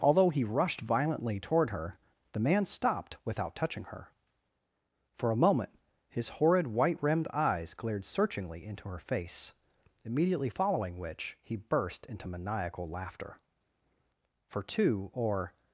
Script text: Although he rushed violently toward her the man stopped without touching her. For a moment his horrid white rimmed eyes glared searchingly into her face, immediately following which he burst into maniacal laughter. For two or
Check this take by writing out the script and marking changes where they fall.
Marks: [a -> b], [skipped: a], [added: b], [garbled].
Although he rushed violently toward her the man stopped without touching her. For a moment his horrid white rimmed eyes glared searchingly into her face, immediately following which he burst into maniacal laughter. For two or